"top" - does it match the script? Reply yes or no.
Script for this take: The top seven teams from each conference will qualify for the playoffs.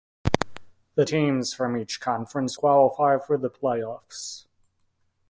no